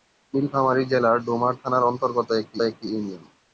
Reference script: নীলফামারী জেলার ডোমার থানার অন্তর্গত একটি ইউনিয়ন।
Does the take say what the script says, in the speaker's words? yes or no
no